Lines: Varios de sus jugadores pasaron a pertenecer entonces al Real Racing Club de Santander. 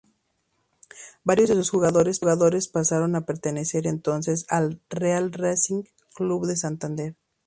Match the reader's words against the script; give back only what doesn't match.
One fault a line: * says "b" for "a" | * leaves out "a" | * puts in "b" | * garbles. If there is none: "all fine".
all fine